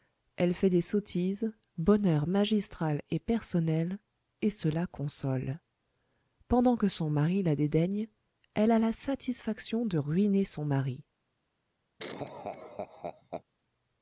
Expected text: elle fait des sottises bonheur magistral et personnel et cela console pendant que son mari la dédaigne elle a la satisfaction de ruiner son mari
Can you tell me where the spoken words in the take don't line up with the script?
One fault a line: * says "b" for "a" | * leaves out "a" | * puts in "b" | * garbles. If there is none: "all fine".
all fine